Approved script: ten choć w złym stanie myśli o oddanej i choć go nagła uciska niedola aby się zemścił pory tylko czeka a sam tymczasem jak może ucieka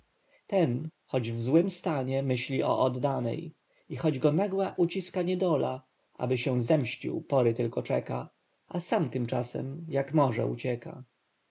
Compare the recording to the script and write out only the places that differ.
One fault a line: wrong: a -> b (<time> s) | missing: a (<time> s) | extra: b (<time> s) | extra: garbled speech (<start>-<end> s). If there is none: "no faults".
no faults